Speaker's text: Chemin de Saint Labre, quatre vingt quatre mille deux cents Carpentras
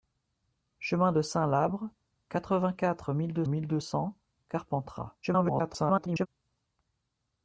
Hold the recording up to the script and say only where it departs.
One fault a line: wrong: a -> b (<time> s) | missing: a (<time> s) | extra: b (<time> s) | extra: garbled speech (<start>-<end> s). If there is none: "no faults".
extra: mille deux (3.5 s)
extra: garbled speech (5.2-6.3 s)